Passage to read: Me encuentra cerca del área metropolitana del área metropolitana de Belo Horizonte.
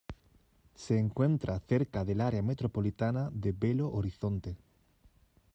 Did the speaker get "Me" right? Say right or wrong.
wrong